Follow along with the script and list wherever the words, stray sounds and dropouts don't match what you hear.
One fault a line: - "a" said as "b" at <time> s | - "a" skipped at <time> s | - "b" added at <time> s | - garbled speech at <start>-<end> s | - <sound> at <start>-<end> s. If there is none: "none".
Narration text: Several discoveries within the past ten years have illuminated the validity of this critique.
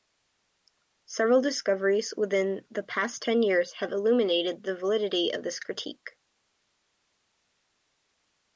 none